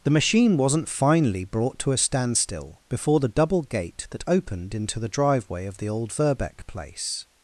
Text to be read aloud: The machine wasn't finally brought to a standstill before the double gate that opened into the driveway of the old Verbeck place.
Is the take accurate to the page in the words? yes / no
yes